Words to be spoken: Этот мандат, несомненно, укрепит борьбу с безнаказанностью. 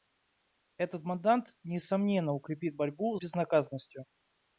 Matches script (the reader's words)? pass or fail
fail